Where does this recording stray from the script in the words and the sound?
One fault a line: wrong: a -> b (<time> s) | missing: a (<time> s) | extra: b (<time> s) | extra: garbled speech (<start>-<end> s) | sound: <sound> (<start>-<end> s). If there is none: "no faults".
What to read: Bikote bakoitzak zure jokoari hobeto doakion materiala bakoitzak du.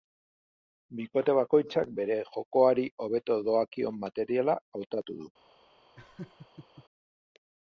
wrong: zure -> bere (2.0 s)
wrong: bakoitzak -> hautatu (4.8 s)
sound: laugh (6.0-6.9 s)